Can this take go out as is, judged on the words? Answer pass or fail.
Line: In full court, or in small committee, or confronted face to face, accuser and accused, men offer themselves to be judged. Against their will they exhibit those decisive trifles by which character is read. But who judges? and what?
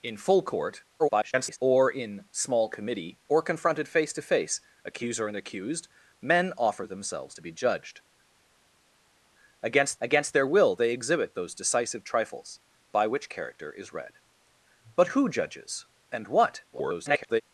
fail